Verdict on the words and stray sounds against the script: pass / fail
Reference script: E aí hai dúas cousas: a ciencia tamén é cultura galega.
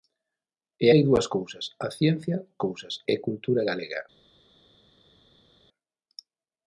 fail